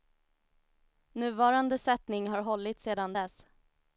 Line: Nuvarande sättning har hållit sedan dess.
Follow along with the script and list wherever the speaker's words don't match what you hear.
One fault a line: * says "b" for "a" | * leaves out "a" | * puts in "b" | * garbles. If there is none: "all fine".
all fine